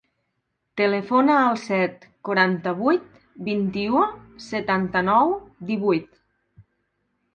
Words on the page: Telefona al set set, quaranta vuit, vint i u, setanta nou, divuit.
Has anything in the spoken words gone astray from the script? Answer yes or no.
yes